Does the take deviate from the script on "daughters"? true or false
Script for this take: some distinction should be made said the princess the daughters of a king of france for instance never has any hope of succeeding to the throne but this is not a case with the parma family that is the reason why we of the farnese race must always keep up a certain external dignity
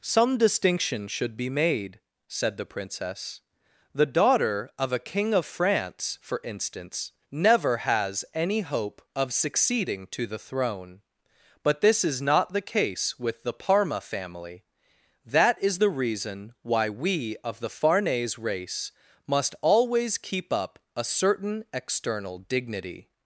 true